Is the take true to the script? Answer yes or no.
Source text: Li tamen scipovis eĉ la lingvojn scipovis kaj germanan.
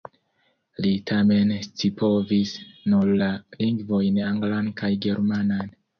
no